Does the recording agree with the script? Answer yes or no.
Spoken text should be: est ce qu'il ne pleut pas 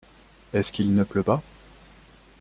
yes